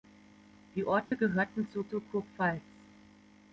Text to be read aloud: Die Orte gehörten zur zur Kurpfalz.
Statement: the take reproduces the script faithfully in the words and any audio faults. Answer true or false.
false